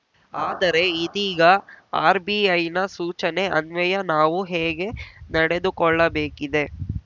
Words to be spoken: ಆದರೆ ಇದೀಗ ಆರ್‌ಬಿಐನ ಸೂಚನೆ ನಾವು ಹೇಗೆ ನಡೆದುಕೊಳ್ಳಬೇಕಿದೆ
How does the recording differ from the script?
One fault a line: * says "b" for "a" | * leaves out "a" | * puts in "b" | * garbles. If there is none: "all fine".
* puts in "ಅನ್ವಯ"